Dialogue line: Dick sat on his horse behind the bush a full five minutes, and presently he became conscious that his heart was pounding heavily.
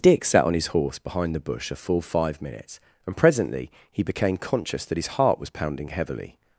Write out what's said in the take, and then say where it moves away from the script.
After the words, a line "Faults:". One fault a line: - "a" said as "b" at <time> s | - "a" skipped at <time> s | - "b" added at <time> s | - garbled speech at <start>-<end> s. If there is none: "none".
Dick sat on his horse behind the bush a full five minutes, and presently he became conscious that his heart was pounding heavily.
Faults:
none